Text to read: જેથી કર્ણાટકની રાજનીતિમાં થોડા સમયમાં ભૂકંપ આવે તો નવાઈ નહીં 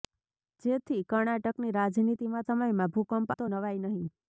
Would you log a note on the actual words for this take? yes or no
yes